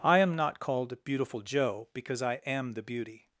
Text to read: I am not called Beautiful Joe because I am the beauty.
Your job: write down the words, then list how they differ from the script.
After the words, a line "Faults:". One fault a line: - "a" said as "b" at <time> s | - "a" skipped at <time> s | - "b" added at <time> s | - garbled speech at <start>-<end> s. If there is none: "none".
I am not called Beautiful Joe because I am the beauty.
Faults:
none